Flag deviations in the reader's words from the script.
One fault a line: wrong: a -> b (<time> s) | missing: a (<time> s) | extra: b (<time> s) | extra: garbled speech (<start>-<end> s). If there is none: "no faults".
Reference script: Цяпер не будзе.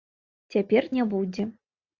no faults